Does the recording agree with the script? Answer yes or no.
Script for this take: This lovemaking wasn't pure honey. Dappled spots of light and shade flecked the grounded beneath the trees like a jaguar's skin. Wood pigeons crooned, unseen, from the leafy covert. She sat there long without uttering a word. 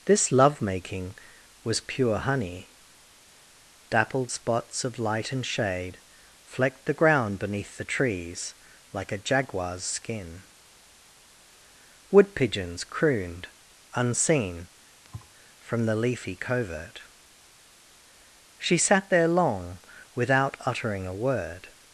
no